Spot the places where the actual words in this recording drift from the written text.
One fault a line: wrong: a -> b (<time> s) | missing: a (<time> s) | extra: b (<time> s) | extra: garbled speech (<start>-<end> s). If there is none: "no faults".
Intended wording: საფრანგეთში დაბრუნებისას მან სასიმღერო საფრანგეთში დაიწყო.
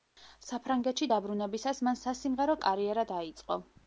wrong: საფრანგეთში -> კარიერა (2.6 s)